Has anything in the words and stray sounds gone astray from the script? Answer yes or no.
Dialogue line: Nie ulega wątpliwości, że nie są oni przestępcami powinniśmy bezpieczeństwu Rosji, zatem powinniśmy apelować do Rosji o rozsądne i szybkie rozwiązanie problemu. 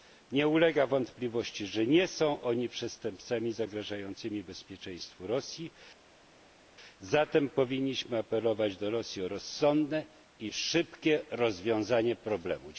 yes